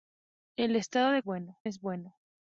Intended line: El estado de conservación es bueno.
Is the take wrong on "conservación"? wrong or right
wrong